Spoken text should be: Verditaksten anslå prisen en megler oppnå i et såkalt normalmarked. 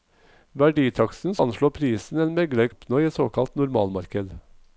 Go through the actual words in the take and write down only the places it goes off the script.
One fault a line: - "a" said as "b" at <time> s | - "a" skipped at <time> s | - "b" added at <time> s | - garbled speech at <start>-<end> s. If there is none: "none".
none